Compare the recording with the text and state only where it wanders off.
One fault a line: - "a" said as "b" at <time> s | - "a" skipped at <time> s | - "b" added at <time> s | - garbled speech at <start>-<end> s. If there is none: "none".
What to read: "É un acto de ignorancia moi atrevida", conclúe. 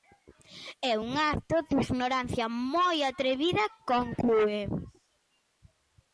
none